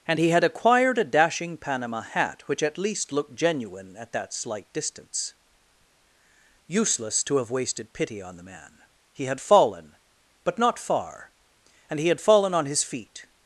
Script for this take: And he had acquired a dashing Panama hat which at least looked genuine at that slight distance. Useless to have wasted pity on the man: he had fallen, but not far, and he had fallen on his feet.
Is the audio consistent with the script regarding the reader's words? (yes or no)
yes